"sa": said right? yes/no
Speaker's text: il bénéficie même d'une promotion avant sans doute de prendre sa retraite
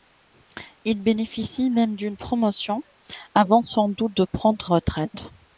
no